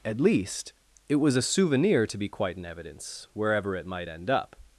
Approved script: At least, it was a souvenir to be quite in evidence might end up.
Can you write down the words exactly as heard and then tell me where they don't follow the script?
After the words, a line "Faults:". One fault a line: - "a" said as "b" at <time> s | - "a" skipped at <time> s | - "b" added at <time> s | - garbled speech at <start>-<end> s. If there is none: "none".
At least, it was a souvenir to be quite in evidence wherever it might end up.
Faults:
- "wherever it" added at 3.3 s